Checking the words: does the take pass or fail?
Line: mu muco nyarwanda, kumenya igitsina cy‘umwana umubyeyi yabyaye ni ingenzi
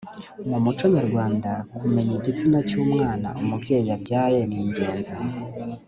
pass